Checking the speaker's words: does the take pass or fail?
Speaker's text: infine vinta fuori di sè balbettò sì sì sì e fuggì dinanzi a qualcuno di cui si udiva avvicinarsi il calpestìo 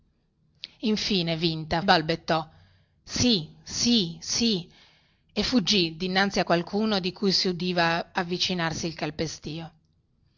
fail